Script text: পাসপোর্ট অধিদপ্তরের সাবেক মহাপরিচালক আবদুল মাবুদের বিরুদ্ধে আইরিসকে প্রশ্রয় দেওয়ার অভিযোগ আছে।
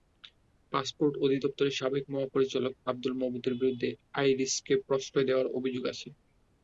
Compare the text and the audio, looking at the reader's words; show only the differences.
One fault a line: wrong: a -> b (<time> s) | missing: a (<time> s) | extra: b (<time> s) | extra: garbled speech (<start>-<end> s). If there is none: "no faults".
no faults